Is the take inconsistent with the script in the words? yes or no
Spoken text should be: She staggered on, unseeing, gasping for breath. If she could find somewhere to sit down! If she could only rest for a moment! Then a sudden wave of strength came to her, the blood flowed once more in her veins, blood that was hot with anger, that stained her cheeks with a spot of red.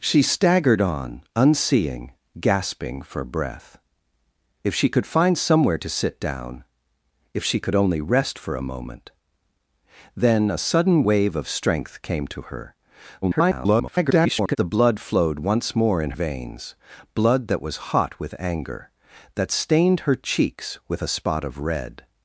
yes